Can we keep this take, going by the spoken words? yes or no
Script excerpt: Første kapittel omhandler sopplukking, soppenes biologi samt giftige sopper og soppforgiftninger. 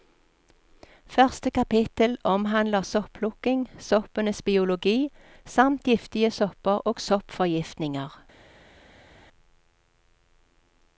yes